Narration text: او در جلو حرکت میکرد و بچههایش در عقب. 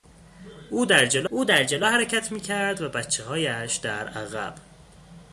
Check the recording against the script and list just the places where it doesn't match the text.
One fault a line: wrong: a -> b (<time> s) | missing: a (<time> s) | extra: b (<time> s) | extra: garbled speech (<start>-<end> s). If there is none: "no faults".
extra: او در جلو (1.3 s)